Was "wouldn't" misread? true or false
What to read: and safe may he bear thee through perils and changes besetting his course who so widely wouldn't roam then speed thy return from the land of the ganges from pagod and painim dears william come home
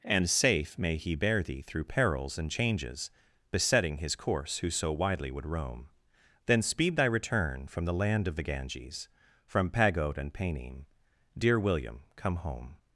true